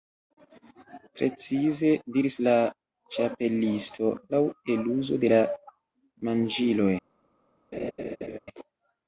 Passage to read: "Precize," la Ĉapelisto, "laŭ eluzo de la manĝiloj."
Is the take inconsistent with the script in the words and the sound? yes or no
yes